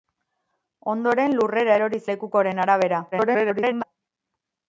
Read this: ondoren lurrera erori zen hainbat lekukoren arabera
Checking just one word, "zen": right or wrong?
wrong